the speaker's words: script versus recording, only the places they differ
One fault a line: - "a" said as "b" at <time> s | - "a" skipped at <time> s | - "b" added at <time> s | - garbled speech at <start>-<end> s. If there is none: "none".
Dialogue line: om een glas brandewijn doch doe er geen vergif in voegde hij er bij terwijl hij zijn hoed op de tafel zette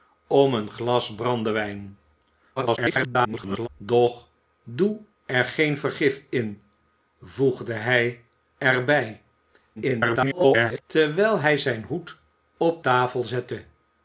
- garbled speech at 2.6-3.7 s
- garbled speech at 9.8-10.8 s
- "de" skipped at 12.8 s